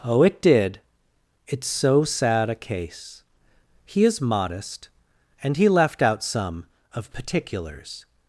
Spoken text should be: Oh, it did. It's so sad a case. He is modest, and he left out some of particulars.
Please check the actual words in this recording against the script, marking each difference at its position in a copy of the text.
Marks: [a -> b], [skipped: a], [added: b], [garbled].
Oh, it did. It's so sad a case. He is modest, and he left out some of particulars.